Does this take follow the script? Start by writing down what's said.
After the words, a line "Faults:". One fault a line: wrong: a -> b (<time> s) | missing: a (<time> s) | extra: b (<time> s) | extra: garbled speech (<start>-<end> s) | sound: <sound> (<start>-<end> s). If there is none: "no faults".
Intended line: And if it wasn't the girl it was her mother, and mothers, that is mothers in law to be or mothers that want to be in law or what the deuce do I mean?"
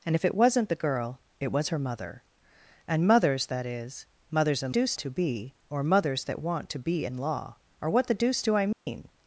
And if it wasn't the girl it was her mother, and mothers, that is mothers in deuce to be or mothers that want to be in law or what the deuce do I mean?"
Faults:
wrong: law -> deuce (4.7 s)
sound: dropout (8.7-8.9 s)